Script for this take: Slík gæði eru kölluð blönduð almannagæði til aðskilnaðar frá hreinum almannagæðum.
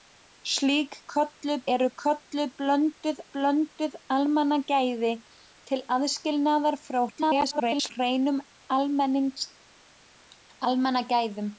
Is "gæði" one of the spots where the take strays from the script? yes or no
yes